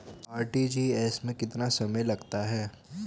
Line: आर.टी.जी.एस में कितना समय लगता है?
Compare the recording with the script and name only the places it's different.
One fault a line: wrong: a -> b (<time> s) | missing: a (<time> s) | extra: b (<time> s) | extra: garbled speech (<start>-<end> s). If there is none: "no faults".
no faults